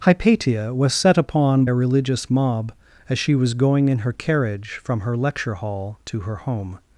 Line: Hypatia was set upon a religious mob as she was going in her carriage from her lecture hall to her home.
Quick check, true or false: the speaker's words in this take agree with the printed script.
true